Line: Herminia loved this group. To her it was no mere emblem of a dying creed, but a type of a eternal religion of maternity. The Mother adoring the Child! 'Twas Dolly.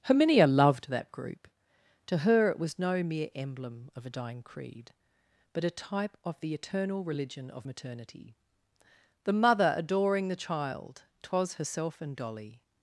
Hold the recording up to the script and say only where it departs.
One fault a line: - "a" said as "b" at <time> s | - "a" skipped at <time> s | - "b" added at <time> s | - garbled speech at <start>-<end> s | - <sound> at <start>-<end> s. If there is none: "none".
- "this" said as "that" at 0.9 s
- "a" said as "the" at 6.4 s
- "herself and" added at 11.5 s